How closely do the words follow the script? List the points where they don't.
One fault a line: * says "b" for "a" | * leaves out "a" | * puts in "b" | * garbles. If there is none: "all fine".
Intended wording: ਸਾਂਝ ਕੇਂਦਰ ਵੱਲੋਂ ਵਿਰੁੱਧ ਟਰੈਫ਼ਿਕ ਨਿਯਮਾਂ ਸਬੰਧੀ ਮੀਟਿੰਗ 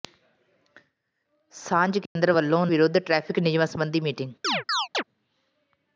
all fine